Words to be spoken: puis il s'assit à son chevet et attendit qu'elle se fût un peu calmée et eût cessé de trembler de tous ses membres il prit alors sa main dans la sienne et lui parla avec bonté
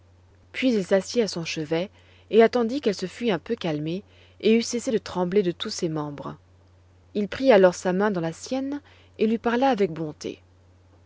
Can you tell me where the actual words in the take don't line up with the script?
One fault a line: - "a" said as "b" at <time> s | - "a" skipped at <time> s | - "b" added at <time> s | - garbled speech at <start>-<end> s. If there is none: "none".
none